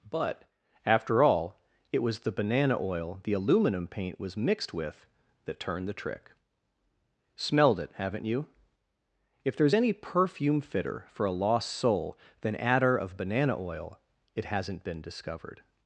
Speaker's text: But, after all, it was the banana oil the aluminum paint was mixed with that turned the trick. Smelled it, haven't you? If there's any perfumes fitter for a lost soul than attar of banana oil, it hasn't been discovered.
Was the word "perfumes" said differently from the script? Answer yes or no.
yes